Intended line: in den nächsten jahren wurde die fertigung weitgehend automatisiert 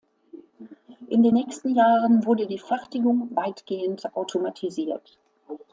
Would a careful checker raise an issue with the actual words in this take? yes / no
no